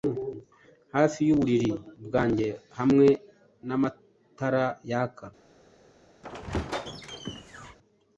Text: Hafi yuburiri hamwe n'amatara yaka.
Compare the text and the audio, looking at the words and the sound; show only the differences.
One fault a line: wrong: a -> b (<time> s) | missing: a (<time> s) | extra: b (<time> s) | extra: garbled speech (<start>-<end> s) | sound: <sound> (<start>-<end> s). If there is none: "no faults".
extra: bwanjye (2.0 s)
sound: squeak (6.2-7.8 s)